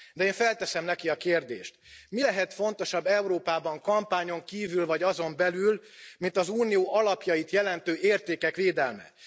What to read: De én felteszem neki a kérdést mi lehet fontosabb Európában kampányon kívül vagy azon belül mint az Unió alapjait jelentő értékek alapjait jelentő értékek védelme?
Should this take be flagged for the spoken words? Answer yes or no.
yes